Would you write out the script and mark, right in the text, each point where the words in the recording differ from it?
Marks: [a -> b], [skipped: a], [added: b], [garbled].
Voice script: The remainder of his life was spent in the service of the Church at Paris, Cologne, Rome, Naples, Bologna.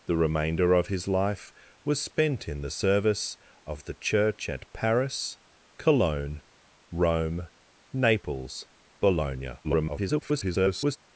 The remainder of his life was spent in the service of the Church at Paris, Cologne, Rome, Naples, Bologna. [garbled]